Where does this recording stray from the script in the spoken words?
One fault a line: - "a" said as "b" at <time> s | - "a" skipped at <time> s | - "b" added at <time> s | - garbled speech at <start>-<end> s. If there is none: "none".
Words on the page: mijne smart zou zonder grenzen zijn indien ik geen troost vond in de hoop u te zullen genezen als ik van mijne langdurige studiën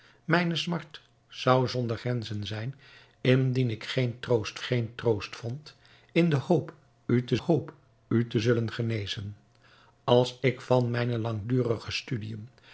- "geen troost" added at 4.6 s
- "hoop u te" added at 7.3 s